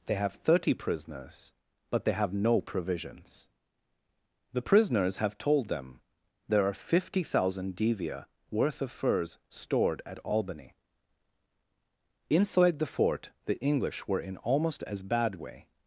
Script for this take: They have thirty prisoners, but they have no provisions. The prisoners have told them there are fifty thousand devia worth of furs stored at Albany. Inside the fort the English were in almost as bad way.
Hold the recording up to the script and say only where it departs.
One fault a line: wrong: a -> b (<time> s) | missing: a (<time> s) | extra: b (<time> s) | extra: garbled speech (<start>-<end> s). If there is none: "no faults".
no faults